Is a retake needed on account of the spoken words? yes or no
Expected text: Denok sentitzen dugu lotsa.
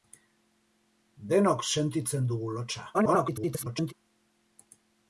yes